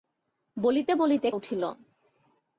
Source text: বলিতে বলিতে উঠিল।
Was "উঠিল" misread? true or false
false